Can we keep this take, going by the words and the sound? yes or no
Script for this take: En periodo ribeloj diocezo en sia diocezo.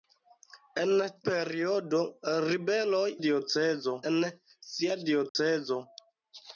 no